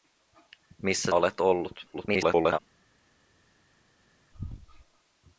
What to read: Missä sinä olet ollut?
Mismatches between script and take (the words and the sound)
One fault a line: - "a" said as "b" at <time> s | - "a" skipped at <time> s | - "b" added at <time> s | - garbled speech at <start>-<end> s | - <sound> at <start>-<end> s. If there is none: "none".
- "sinä" skipped at 1.1 s
- garbled speech at 1.9-2.6 s